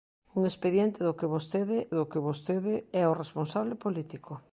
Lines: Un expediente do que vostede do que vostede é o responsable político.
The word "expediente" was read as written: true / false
true